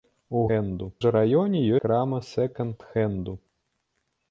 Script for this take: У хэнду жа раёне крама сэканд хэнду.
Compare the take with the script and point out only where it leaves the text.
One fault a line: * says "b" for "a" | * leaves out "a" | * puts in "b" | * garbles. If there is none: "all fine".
all fine